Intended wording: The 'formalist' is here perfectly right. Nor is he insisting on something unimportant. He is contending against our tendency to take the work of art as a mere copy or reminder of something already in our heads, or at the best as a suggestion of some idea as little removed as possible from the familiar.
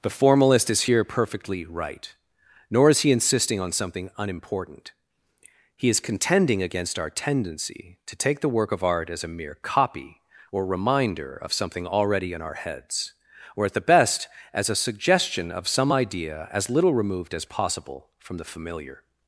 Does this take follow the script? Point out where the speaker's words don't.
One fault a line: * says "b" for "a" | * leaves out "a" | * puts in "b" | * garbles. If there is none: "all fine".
all fine